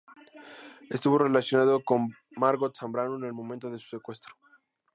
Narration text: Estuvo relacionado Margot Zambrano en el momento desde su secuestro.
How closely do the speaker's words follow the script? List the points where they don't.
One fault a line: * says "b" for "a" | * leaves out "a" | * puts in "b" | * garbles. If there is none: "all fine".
* puts in "con"
* says "de" for "desde"